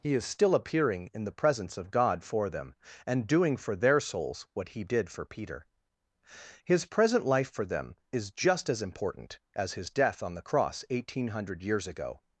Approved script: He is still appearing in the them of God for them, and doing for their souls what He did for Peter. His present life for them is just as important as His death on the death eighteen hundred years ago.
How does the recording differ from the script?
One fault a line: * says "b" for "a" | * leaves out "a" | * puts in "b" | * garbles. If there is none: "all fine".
* says "presence" for "them"
* says "cross" for "death"